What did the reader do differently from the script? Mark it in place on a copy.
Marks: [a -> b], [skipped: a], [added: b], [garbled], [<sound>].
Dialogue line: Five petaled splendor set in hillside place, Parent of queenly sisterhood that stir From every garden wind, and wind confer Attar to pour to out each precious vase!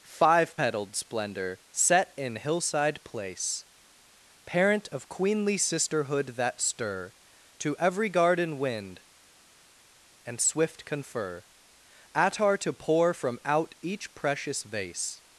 Five petaled splendor set in hillside place, Parent of queenly sisterhood that stir [From -> To] every garden wind, and [wind -> swift] confer Attar to pour [to -> from] out each precious vase!